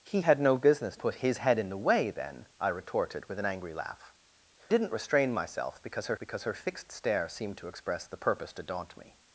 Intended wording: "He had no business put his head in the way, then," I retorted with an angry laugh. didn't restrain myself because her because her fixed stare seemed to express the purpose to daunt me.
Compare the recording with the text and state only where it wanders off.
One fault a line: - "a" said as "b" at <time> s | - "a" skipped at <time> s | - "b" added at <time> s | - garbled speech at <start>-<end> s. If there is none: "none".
none